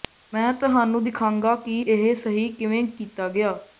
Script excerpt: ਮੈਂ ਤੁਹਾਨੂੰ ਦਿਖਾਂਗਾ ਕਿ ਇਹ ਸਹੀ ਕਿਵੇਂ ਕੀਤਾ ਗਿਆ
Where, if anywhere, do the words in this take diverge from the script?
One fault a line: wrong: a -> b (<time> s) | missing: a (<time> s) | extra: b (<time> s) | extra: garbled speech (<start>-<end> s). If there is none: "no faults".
no faults